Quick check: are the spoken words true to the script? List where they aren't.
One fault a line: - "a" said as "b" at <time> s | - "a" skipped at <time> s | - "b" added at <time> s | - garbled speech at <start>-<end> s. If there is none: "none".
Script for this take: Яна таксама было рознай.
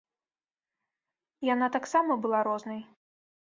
- "было" said as "была" at 2.2 s